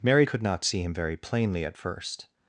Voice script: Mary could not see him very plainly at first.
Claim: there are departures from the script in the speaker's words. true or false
false